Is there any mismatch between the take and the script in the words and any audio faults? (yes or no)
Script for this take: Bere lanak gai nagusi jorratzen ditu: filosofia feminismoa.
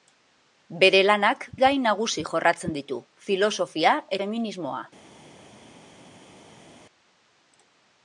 no